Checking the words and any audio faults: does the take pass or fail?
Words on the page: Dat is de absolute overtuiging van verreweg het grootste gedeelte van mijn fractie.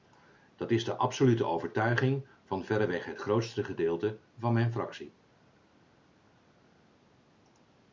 pass